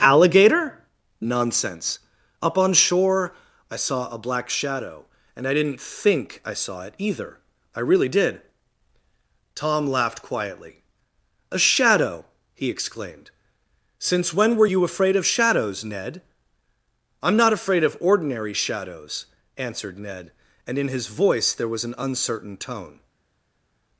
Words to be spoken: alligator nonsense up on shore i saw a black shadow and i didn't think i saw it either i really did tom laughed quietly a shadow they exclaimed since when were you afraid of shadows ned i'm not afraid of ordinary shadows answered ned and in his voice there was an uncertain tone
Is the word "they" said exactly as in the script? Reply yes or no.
no